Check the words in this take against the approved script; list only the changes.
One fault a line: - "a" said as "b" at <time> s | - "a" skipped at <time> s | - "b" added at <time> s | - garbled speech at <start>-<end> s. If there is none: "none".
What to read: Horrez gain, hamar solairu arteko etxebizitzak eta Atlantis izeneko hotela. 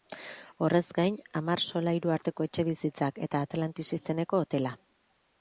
none